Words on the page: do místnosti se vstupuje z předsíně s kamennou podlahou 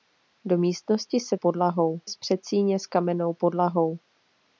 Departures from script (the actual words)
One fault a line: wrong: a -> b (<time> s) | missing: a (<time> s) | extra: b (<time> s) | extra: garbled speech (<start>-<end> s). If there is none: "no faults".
wrong: vstupuje -> podlahou (1.3 s)